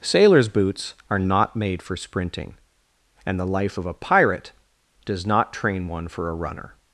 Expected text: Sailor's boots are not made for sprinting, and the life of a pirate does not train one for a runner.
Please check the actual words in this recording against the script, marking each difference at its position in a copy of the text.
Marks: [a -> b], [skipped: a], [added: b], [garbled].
Sailor's boots are not made for sprinting, and the life of a pirate does not train one for a runner.